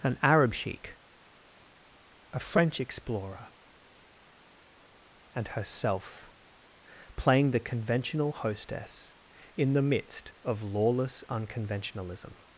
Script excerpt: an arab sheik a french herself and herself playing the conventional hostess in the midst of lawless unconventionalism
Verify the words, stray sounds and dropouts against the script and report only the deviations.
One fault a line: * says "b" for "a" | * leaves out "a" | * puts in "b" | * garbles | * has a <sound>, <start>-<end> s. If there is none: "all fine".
* says "explorer" for "herself"